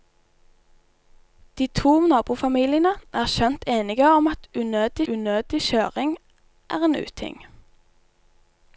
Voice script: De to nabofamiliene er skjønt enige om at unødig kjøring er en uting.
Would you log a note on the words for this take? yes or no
yes